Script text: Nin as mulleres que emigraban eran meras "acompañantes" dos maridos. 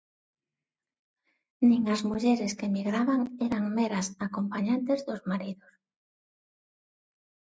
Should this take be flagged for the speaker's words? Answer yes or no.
no